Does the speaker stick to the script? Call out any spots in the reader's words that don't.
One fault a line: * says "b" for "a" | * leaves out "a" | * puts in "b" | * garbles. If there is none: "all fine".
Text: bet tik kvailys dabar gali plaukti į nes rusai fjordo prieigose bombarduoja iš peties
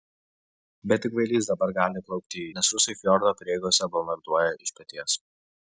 all fine